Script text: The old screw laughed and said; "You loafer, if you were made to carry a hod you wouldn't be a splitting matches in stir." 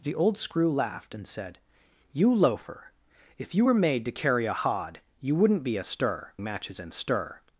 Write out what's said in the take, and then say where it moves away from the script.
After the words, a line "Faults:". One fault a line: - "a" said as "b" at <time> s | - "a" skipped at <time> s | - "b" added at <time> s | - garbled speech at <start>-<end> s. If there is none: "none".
The old screw laughed and said; "You loafer, if you were made to carry a hod you wouldn't be a stir matches in stir."
Faults:
- "splitting" said as "stir" at 5.8 s